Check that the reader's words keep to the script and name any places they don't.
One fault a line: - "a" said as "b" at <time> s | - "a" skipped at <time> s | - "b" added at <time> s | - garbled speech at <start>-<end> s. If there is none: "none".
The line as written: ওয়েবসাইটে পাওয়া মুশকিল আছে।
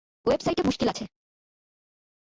- "পাওয়া" skipped at 0.6 s